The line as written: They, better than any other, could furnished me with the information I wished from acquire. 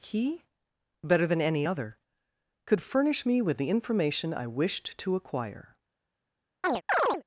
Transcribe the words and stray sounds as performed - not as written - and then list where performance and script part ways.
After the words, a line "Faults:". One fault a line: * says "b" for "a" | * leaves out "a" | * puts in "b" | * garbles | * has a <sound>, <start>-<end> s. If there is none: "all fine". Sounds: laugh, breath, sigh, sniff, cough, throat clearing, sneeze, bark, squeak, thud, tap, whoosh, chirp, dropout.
He, better than any other, could furnish me with the information I wished to acquire.
Faults:
* says "He" for "They"
* says "furnish" for "furnished"
* says "to" for "from"
* has a chirp, 6.6-7.2 s